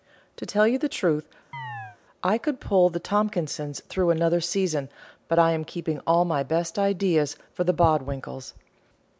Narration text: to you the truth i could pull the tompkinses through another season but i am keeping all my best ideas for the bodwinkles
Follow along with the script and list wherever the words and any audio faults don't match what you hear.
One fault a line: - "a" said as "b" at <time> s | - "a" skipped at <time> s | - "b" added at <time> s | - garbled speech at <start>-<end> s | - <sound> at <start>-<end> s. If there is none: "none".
- "tell" added at 0.5 s
- chirp at 1.5-2.0 s